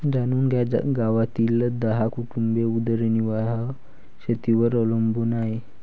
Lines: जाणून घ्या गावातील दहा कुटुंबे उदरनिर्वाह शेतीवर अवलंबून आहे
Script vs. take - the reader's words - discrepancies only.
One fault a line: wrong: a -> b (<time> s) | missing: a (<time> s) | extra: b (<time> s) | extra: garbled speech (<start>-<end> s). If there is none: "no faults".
no faults